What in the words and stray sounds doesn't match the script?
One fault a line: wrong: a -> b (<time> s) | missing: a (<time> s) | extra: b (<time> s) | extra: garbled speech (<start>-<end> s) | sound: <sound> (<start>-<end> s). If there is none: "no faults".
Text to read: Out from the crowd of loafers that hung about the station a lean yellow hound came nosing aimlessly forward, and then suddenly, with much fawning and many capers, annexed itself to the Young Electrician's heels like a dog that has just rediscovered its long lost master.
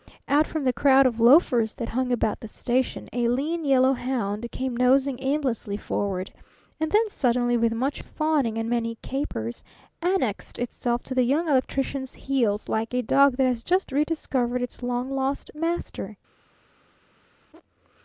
no faults